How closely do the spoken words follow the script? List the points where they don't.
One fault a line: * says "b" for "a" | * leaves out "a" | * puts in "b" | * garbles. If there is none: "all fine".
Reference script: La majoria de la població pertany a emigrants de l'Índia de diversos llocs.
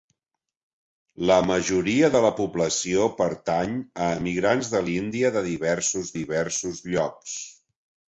* puts in "diversos"